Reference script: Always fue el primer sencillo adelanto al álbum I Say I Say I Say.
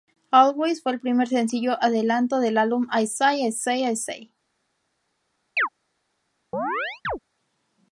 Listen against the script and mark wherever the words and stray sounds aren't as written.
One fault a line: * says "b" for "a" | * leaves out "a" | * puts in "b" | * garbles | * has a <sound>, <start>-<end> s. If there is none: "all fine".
* says "del" for "al"
* has a chirp, 5.6-5.7 s
* has a chirp, 6.5-7.2 s